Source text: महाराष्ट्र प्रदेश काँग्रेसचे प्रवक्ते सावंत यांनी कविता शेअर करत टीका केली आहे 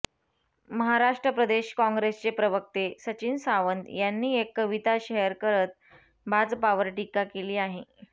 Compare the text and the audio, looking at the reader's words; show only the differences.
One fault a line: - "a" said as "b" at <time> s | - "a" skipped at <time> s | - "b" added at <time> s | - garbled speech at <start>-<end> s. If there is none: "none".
- "सचिन" added at 3.0 s
- "एक" added at 4.4 s
- "भाजपावर" added at 6.3 s